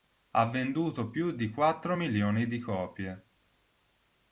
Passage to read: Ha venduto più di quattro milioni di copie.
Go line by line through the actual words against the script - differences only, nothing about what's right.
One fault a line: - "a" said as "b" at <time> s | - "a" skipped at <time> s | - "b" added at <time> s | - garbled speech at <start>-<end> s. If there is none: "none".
none